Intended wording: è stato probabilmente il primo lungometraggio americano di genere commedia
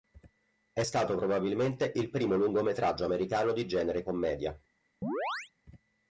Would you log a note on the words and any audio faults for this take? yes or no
yes